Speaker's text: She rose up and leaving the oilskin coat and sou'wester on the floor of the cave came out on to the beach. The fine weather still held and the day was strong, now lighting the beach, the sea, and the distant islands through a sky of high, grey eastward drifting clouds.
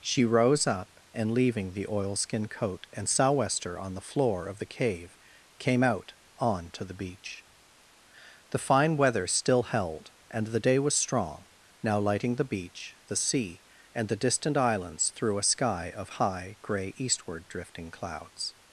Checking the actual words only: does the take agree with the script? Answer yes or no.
yes